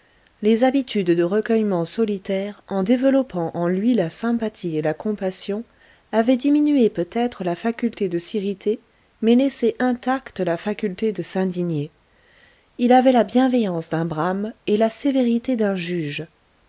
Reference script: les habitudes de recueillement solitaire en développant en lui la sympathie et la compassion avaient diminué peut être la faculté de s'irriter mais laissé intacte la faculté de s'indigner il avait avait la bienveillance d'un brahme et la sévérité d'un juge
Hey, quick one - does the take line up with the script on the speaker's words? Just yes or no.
no